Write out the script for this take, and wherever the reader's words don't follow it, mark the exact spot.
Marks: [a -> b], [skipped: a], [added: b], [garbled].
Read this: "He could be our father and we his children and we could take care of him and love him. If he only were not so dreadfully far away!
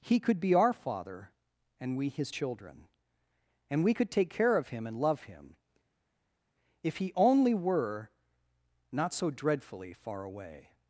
"He could be our father and we his children and we could take care of him and love him. If he only were not so dreadfully far away!